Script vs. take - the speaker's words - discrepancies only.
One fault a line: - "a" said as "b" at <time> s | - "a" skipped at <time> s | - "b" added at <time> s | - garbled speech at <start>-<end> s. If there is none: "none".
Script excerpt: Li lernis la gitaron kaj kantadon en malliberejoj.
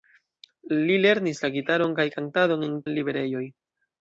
none